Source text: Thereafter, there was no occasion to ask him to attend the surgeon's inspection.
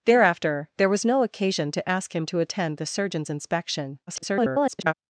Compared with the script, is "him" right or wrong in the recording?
right